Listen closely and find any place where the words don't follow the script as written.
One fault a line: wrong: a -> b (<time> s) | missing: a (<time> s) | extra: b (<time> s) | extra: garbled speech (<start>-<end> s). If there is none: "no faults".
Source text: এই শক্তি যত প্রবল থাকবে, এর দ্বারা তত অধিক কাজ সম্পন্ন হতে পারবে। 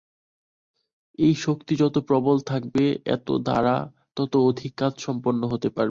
no faults